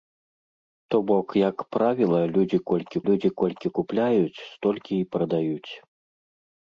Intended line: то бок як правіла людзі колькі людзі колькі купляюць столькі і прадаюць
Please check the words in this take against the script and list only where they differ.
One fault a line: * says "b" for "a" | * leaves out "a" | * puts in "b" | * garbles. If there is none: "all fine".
all fine